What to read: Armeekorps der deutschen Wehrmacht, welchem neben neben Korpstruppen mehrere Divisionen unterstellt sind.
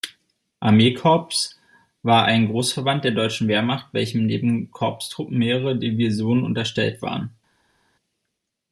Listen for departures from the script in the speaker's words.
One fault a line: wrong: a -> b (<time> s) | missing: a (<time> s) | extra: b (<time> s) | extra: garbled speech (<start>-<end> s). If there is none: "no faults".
extra: war ein Großverband (2.0 s)
missing: neben (4.7 s)
wrong: sind -> waren (7.0 s)